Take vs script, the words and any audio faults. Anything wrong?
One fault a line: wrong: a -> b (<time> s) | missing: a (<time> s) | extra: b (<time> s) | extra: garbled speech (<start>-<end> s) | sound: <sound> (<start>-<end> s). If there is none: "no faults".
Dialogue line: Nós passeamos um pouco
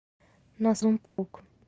missing: passeamos (0.8 s)
sound: dropout (1.1-1.2 s)